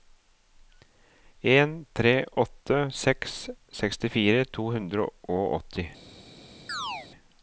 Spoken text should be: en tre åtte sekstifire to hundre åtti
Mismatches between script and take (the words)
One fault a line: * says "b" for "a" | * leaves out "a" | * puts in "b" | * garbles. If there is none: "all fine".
* puts in "seks"
* puts in "og"